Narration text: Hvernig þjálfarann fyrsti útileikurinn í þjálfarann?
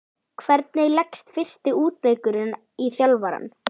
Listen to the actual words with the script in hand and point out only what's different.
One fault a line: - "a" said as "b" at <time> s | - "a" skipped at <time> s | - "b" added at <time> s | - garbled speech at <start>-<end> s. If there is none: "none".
- "þjálfarann" said as "leggst" at 0.9 s